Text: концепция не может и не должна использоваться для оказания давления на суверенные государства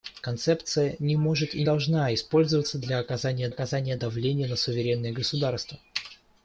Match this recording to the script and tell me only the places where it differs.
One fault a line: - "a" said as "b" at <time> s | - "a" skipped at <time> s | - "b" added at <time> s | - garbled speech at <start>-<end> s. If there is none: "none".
- "не" skipped at 1.6 s
- "оказания" added at 3.5 s